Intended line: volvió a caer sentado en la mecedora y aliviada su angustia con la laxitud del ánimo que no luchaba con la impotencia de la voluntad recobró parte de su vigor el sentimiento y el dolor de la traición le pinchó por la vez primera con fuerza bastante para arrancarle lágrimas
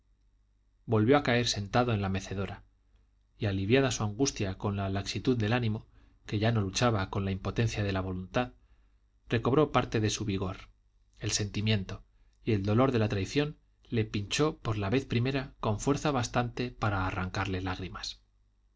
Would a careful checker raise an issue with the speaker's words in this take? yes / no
yes